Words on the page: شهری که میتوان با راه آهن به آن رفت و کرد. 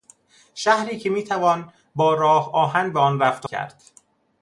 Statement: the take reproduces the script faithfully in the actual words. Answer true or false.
true